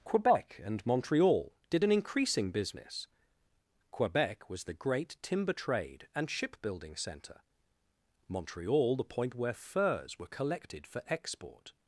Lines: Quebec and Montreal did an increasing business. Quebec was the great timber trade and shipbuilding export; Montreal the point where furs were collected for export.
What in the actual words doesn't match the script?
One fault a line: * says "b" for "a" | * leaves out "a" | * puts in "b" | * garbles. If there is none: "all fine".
* says "centre" for "export"